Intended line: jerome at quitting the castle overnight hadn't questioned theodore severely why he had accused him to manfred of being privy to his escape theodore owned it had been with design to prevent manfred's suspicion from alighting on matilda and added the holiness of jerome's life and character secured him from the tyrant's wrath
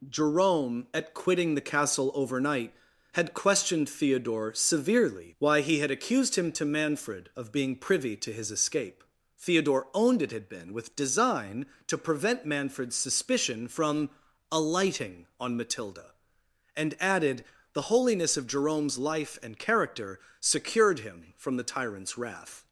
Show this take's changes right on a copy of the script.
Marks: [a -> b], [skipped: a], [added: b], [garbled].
jerome at quitting the castle overnight [hadn't -> had] questioned theodore severely why he had accused him to manfred of being privy to his escape theodore owned it had been with design to prevent manfred's suspicion from alighting on matilda and added the holiness of jerome's life and character secured him from the tyrant's wrath